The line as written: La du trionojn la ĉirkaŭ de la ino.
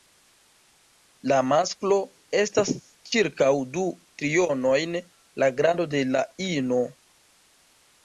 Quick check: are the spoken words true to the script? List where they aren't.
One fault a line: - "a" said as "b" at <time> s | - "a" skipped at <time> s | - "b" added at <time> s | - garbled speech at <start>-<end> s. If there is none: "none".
- "masklo estas ĉirkaŭ" added at 1.5 s
- "ĉirkaŭ" said as "grando" at 5.6 s